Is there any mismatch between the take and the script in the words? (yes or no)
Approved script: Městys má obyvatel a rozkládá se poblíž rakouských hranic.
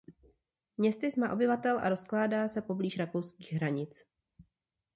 no